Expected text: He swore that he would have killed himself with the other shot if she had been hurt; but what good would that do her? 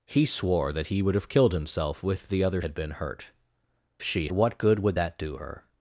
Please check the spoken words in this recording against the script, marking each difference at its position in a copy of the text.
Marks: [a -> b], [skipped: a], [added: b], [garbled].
He swore that he would have killed himself with the other [skipped: shot if she] had been hurt; [but -> she] what good would that do her?